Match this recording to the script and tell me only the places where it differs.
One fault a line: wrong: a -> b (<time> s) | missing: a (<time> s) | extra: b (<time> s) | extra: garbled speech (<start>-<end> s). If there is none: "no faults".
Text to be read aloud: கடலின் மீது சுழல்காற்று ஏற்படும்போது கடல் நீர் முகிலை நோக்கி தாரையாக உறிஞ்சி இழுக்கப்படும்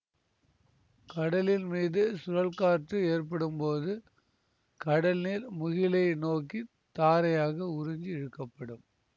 no faults